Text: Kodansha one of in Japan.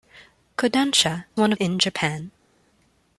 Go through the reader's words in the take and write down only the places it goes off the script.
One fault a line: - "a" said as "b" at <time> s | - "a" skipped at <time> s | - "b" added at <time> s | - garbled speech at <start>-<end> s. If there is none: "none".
none